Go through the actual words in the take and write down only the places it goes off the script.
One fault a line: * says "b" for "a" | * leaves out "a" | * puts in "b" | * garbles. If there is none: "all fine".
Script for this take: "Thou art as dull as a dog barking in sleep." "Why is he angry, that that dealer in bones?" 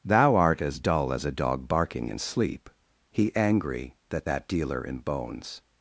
* leaves out "Why is"